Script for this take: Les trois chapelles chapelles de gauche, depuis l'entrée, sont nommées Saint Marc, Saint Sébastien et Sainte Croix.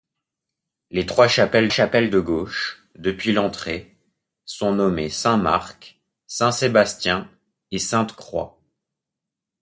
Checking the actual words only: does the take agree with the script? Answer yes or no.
yes